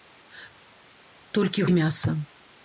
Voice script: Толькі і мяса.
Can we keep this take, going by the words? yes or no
yes